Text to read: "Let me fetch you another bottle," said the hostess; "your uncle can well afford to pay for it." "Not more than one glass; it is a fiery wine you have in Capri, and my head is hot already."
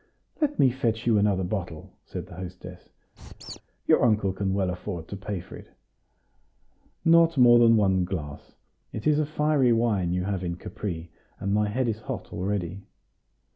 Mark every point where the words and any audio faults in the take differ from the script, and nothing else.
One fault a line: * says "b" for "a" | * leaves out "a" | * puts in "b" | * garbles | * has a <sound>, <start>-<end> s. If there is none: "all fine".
* has a squeak, 3.2-3.6 s